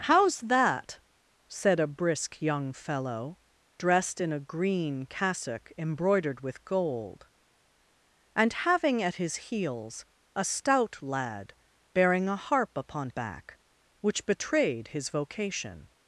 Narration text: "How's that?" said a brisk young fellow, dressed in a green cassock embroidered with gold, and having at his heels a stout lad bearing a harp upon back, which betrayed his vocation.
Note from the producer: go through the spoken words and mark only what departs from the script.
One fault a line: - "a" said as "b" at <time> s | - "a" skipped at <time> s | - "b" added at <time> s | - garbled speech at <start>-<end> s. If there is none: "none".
none